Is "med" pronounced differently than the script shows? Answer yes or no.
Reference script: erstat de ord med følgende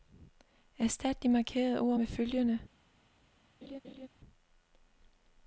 no